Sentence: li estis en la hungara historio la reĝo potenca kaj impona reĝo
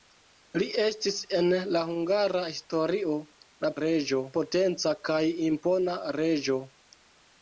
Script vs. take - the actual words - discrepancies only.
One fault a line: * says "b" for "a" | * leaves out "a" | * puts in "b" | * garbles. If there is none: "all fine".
all fine